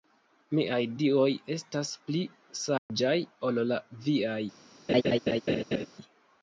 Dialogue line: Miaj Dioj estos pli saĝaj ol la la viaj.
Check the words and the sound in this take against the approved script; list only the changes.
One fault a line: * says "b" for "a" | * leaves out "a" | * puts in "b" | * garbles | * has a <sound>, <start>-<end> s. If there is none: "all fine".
* says "estas" for "estos"
* has a dropout, 2.8-2.9 s
* leaves out "la"
* has a laugh, 4.9-5.9 s